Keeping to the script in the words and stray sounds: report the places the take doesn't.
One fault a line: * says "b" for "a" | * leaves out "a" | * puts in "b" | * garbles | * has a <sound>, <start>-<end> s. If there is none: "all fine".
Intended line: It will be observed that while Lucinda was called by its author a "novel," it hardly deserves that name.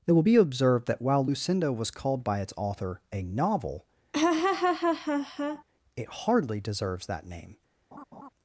* has a laugh, 4.1-5.6 s
* has a laugh, 7.9-8.3 s